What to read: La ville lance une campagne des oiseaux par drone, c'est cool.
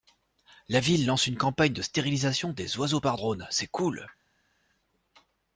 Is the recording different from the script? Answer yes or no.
yes